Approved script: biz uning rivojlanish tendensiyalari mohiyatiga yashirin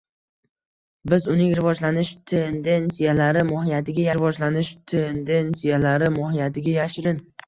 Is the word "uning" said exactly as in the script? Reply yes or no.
yes